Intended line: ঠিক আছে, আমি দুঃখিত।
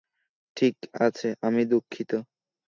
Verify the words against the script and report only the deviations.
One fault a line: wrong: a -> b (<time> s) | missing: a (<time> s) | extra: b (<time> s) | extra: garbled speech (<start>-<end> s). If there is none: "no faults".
no faults